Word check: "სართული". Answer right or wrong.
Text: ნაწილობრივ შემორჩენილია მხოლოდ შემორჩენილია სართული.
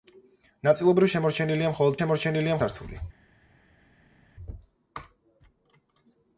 right